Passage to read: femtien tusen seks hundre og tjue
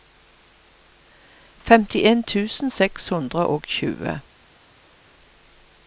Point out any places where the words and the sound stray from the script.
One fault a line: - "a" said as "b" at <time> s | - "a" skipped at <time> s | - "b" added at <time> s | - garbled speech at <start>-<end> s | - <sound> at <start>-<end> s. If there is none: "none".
none